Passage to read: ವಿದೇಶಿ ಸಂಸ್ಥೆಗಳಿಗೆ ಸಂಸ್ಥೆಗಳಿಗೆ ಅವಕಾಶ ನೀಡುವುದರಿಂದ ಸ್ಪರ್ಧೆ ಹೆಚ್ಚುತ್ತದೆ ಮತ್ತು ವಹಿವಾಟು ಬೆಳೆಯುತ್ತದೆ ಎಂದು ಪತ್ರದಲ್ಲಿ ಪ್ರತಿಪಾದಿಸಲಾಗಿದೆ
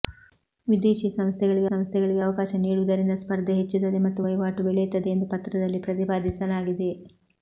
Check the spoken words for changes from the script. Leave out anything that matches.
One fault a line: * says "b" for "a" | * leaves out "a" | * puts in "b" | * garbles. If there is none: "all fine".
all fine